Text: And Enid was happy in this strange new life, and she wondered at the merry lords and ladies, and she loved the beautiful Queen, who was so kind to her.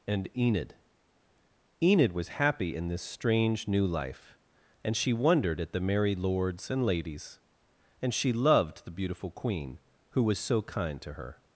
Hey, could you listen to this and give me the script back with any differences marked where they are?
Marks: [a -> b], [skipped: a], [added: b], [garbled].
And Enid [added: Enid] was happy in this strange new life, and she wondered at the merry lords and ladies, and she loved the beautiful Queen, who was so kind to her.